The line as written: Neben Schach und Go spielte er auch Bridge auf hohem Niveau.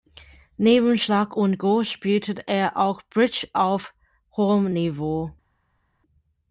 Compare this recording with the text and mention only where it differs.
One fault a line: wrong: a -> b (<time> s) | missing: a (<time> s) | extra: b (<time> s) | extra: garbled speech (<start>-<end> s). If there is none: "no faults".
no faults